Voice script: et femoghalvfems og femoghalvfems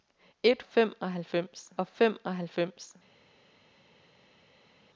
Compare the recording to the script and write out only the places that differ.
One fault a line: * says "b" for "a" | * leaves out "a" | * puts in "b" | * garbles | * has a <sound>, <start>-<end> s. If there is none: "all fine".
all fine